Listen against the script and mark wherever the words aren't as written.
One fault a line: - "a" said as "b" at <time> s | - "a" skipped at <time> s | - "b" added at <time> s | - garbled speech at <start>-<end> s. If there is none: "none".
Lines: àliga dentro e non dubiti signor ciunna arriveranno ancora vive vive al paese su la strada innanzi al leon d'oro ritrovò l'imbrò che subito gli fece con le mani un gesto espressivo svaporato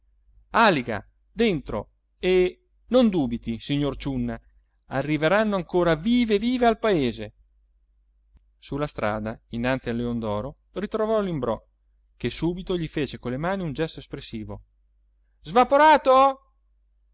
none